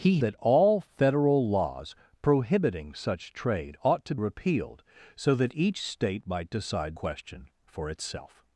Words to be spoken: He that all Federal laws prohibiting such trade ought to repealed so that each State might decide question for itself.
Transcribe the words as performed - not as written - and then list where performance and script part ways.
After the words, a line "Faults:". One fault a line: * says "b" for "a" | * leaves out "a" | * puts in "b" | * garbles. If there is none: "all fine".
He that all Federal laws prohibiting such trade ought to repealed so that each State might decide question for itself.
Faults:
all fine